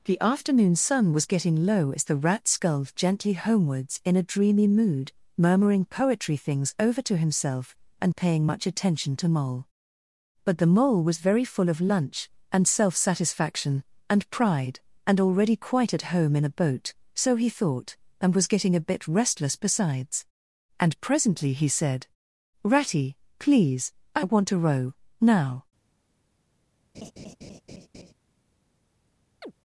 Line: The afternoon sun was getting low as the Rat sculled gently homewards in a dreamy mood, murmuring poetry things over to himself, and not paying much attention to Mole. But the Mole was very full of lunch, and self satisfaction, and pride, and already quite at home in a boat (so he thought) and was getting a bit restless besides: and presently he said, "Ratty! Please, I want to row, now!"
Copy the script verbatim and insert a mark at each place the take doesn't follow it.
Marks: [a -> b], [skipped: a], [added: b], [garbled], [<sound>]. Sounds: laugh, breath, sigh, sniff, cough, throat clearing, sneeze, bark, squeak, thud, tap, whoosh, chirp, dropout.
The afternoon sun was getting low as the Rat sculled gently homewards in a dreamy mood, murmuring poetry things over to himself, and [skipped: not] paying much attention to Mole. But the Mole was very full of lunch, and self satisfaction, and pride, and already quite at home in a boat (so he thought) and was getting a bit restless besides: and presently he said, "Ratty! Please, I want to row, now!" [laugh] [chirp]